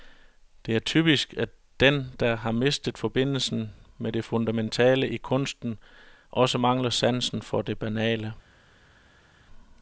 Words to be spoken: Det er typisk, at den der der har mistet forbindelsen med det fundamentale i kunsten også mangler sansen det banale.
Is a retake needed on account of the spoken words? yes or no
yes